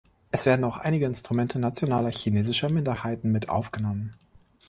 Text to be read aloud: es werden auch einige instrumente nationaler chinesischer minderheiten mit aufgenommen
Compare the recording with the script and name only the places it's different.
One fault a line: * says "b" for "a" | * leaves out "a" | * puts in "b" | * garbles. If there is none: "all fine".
all fine